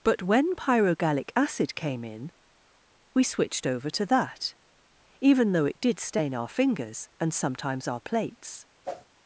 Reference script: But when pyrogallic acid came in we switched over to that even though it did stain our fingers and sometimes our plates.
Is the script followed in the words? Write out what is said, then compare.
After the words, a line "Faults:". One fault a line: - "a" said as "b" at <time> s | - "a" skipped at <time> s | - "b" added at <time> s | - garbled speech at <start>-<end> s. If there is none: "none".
But when pyrogallic acid came in we switched over to that even though it did stain our fingers and sometimes our plates.
Faults:
none